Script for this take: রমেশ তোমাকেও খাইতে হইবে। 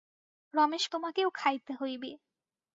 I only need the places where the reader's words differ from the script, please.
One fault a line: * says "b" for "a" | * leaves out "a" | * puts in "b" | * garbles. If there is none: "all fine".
all fine